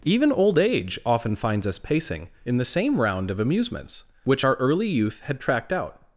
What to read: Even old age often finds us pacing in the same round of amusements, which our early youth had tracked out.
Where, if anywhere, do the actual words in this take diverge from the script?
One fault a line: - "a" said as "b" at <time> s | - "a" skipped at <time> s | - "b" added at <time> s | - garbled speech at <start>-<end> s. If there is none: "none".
none